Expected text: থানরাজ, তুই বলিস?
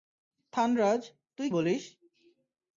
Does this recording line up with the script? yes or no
yes